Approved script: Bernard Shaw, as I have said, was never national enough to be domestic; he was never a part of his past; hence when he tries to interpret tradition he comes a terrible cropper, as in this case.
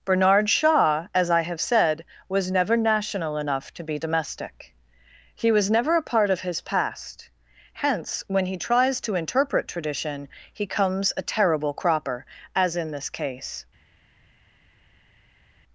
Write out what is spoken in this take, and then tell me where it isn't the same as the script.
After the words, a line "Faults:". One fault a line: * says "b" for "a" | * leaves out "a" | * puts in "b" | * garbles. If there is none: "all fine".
Bernard Shaw, as I have said, was never national enough to be domestic; he was never a part of his past; hence when he tries to interpret tradition he comes a terrible cropper, as in this case.
Faults:
all fine